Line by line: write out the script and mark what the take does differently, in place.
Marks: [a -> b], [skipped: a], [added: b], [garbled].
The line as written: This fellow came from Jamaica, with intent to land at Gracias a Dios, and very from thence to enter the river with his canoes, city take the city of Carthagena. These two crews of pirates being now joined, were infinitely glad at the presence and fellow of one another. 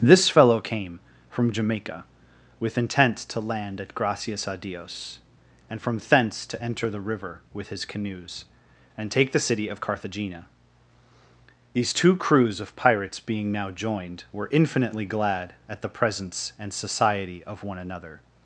This fellow came from Jamaica, with intent to land at Gracias a Dios, and [skipped: very] from thence to enter the river with his canoes, [city -> and] take the city of Carthagena. These two crews of pirates being now joined, were infinitely glad at the presence and [fellow -> society] of one another.